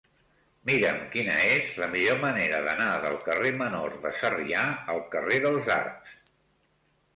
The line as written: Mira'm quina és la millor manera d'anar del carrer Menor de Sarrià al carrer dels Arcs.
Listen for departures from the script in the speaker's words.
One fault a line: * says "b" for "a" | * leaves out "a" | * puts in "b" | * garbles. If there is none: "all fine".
all fine